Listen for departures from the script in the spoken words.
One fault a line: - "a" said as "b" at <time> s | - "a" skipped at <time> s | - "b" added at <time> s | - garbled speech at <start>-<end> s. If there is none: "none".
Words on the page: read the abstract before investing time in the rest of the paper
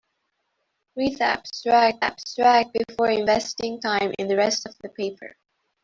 - "abstract" added at 2.0 s